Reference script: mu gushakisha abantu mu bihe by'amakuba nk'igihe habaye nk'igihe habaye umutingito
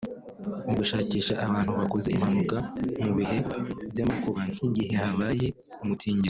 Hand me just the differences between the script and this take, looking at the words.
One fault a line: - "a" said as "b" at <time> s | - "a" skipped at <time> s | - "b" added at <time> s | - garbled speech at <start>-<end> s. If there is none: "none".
- "bakoze impanuka" added at 1.8 s
- "nk'igihe habaye" skipped at 5.5 s